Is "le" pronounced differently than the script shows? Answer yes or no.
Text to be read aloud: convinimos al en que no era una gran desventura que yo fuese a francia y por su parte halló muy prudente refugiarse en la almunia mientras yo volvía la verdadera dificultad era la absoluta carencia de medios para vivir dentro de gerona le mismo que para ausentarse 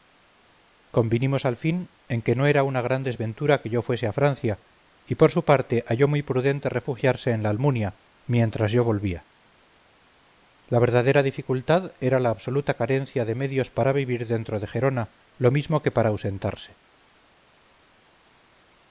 yes